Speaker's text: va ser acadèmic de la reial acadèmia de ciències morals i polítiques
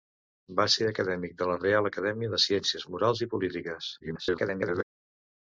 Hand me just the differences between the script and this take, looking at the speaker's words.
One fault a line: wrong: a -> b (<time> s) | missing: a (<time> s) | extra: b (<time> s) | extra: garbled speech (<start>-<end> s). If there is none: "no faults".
extra: garbled speech (4.0-4.8 s)